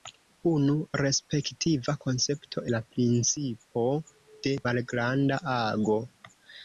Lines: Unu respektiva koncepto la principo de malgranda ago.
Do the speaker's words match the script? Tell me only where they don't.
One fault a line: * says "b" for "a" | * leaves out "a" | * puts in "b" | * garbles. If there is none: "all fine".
all fine